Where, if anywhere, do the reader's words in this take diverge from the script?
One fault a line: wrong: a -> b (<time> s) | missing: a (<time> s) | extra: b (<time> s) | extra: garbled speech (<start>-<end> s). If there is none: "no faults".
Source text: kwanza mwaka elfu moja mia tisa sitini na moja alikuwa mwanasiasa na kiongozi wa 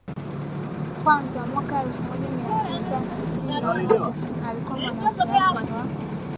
missing: na kiongozi (5.3 s)